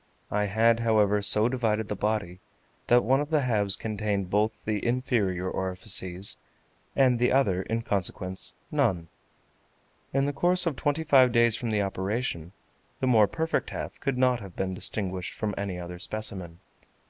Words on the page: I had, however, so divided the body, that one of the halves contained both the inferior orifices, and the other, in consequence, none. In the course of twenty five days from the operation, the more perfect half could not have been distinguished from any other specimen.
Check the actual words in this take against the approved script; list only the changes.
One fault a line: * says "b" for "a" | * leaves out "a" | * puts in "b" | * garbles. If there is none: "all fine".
all fine